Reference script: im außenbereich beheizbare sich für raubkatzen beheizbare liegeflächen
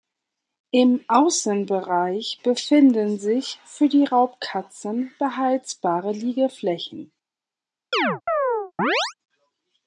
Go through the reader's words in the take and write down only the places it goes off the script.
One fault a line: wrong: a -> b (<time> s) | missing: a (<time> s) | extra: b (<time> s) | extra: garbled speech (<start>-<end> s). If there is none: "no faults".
wrong: beheizbare -> befinden (2.4 s)
extra: die (3.9 s)